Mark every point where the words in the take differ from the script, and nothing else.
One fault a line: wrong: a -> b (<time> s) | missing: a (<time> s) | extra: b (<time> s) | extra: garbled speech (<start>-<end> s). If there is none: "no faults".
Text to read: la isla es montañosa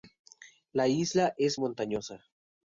no faults